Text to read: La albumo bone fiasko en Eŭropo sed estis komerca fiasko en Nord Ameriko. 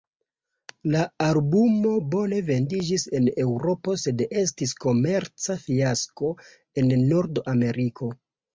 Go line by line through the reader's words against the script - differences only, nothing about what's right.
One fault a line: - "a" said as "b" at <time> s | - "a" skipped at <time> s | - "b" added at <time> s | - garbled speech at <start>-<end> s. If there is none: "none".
- "fiasko" said as "vendiĝis" at 2.5 s